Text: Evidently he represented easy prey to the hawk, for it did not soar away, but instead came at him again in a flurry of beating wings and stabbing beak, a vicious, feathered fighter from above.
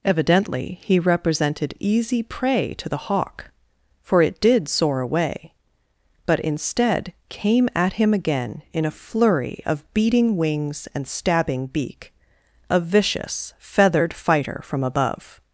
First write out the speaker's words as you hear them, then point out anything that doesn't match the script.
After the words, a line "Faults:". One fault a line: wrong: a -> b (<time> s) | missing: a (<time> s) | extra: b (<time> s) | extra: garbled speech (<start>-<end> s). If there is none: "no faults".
Evidently he represented easy prey to the hawk, for it did soar away, but instead came at him again in a flurry of beating wings and stabbing beak, a vicious, feathered fighter from above.
Faults:
missing: not (4.7 s)